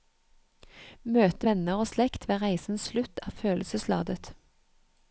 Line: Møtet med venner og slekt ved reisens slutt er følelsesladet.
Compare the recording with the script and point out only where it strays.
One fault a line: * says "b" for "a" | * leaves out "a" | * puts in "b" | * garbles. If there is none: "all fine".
* leaves out "med"